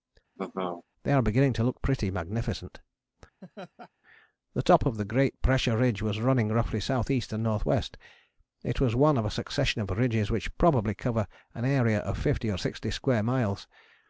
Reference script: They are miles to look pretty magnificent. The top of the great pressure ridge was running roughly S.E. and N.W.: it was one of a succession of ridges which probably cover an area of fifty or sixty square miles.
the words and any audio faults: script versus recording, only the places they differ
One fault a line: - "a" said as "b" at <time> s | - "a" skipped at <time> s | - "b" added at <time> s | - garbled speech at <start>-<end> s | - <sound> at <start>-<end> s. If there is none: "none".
- laugh at 0.4-0.8 s
- "miles" said as "beginning" at 1.2 s
- laugh at 3.4-3.9 s